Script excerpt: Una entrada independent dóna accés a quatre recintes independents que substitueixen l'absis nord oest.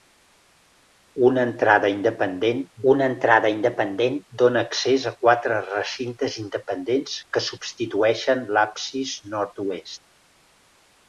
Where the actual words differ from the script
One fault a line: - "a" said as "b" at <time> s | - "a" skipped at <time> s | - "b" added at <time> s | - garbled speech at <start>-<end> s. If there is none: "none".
- "una entrada independent" added at 2.9 s